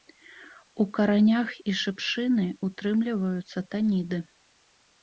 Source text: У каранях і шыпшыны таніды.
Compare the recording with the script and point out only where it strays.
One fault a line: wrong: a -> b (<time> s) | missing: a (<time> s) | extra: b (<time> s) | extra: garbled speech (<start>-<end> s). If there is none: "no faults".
extra: ўтрымліваюцца (2.7 s)